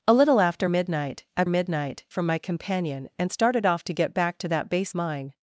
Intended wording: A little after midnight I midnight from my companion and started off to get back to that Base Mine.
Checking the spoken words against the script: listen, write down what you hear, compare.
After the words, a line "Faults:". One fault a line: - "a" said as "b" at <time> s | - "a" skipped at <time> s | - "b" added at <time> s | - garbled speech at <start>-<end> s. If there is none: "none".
A little after midnight I midnight from my companion and started off to get back to that Base Mine.
Faults:
none